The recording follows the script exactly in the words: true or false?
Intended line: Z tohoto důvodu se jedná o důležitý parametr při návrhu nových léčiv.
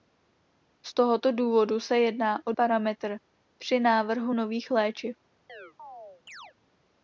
false